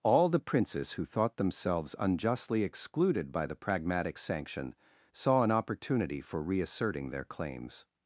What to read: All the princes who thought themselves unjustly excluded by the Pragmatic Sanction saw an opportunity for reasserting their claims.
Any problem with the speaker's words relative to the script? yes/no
no